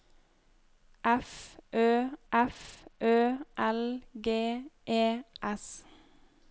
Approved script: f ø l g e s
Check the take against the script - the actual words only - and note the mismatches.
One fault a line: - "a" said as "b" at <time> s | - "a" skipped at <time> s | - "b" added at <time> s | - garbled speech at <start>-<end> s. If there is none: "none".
- "f ø" added at 2.3 s